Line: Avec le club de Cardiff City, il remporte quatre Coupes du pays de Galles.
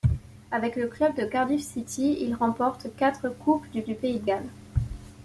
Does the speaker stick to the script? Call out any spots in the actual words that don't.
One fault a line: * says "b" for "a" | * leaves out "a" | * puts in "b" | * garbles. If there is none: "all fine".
* puts in "du"